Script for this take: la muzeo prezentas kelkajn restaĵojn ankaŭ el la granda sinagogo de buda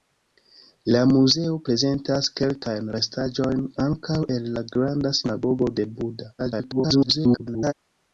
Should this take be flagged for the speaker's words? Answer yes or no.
yes